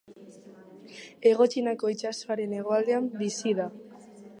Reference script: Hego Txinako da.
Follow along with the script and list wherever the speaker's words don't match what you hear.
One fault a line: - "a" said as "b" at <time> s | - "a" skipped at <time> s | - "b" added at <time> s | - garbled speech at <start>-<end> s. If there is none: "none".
- "itsasoaren hegoaldean bizi" added at 1.9 s